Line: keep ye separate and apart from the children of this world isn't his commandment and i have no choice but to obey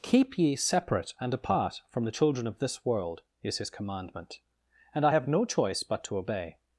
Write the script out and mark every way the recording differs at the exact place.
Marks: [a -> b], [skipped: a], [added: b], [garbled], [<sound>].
keep ye separate and apart from the children of this world [isn't -> is] his commandment and i have no choice but to obey